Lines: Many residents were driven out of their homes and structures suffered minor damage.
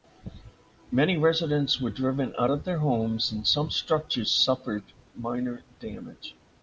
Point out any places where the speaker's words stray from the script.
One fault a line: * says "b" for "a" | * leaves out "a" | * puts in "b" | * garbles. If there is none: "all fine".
* puts in "some"